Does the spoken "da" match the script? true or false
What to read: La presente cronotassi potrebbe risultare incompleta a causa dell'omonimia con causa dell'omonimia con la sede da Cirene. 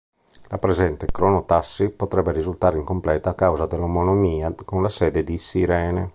false